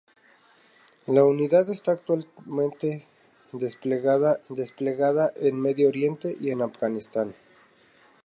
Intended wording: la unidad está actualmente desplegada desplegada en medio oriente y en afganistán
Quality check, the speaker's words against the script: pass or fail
pass